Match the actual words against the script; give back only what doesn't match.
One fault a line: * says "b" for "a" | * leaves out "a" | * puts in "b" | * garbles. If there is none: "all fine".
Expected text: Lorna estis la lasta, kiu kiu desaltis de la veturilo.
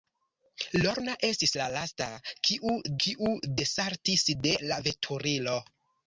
all fine